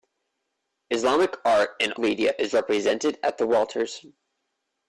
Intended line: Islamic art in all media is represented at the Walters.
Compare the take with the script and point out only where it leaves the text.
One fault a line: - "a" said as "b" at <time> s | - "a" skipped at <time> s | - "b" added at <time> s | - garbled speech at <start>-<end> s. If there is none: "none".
- "all" skipped at 1.9 s